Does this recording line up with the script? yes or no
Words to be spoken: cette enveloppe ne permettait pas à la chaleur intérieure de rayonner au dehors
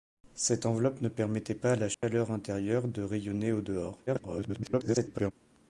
no